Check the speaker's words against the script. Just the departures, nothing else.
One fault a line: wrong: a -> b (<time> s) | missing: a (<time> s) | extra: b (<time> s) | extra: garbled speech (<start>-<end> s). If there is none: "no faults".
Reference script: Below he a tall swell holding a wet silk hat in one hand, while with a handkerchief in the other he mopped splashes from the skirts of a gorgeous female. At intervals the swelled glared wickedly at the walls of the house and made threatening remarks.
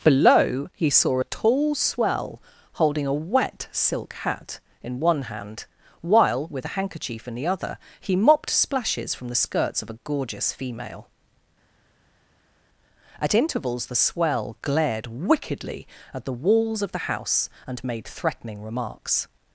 extra: saw (0.9 s)
wrong: swelled -> swell (14.0 s)